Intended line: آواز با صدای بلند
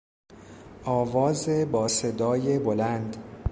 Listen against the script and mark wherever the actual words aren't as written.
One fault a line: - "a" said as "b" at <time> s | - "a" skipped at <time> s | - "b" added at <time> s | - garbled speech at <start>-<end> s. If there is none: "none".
none